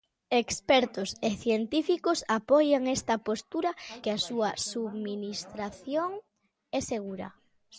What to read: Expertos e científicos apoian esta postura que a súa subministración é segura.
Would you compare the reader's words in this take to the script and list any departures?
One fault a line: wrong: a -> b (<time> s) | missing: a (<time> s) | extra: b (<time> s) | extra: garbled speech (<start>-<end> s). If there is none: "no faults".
no faults